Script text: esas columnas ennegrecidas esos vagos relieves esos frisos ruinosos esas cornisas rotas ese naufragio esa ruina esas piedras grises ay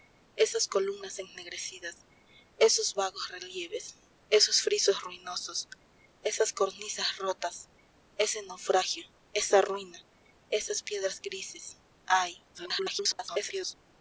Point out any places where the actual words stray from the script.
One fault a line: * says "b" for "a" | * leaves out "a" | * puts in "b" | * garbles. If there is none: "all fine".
* garbles